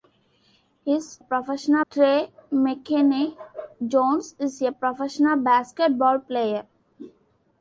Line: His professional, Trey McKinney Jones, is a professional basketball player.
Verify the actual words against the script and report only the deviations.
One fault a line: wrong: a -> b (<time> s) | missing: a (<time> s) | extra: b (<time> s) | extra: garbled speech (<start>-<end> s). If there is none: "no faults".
no faults